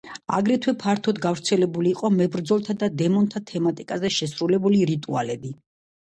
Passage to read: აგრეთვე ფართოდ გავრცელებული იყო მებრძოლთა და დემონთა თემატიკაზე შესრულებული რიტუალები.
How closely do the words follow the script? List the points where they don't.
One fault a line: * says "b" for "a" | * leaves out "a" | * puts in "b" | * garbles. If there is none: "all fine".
all fine